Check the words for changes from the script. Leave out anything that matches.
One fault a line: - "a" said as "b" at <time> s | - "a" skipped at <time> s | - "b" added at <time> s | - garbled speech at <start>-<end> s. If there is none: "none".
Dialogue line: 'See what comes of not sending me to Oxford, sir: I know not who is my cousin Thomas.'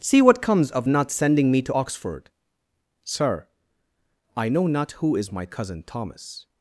none